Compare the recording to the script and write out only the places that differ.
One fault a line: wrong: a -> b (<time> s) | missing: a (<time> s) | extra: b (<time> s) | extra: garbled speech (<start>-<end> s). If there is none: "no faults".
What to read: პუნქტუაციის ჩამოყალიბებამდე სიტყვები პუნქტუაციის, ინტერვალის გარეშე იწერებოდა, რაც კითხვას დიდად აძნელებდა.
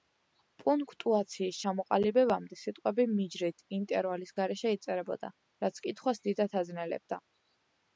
wrong: პუნქტუაციის -> მიჯრით (3.2 s)